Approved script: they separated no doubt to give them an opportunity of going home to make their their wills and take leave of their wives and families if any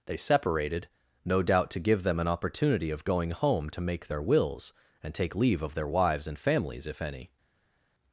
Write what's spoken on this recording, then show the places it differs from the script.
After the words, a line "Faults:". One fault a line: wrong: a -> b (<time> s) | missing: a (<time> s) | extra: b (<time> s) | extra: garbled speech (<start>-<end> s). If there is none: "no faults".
they separated no doubt to give them an opportunity of going home to make their wills and take leave of their wives and families if any
Faults:
missing: their (4.2 s)